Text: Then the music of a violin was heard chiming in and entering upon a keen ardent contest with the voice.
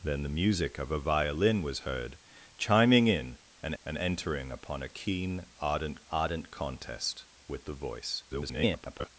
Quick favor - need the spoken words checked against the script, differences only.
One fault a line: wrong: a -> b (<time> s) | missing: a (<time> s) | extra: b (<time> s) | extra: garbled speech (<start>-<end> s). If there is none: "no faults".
extra: and (3.8 s)
extra: ardent (6.1 s)
extra: garbled speech (8.3-9.1 s)